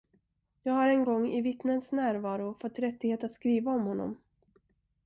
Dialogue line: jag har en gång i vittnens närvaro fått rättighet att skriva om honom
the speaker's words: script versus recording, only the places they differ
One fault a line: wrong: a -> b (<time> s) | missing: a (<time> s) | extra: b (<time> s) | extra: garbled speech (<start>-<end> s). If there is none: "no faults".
no faults